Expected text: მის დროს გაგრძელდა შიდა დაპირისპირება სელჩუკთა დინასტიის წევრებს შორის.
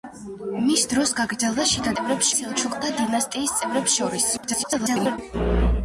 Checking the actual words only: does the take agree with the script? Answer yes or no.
no